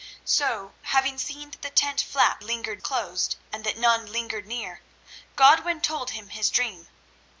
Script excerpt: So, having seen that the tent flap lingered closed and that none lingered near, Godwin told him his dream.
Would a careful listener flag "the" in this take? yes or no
no